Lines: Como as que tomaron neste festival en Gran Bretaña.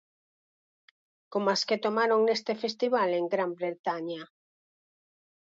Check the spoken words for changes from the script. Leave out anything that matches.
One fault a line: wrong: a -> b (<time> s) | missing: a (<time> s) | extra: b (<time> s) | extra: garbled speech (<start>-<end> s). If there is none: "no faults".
no faults